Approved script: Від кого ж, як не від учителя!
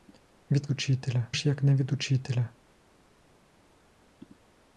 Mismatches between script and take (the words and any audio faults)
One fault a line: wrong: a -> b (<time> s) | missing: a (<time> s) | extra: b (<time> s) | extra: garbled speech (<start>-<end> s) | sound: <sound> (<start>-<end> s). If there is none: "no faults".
wrong: кого -> учителя (0.7 s)